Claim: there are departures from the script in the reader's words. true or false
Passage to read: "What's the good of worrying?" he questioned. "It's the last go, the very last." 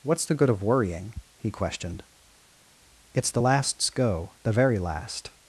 true